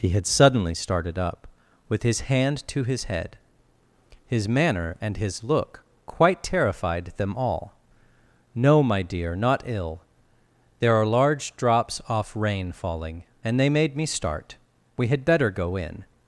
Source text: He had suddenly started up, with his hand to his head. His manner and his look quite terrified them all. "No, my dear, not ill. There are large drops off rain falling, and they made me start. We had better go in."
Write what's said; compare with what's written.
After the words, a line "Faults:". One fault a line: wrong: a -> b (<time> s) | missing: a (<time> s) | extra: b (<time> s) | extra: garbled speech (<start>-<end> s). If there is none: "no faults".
He had suddenly started up, with his hand to his head. His manner and his look quite terrified them all. "No, my dear, not ill. There are large drops off rain falling, and they made me start. We had better go in."
Faults:
no faults